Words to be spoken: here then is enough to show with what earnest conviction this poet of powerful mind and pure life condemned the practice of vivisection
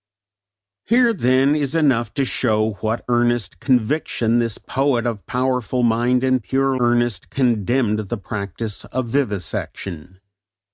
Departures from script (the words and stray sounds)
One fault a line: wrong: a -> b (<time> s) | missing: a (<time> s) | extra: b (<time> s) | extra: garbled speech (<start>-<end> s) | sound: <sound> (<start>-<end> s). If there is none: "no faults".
wrong: life -> earnest (6.8 s)